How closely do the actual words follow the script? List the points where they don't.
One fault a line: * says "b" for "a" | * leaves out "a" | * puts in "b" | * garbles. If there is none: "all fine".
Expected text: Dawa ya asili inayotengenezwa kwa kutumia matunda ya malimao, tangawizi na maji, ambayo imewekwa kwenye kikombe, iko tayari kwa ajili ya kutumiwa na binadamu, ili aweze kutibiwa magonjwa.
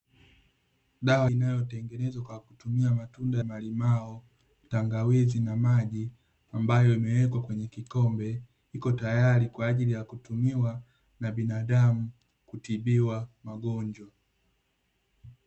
* leaves out "ya asili"
* leaves out "ya"
* leaves out "ili aweze"